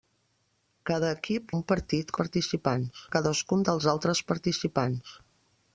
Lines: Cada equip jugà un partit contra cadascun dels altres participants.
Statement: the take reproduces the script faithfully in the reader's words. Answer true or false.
false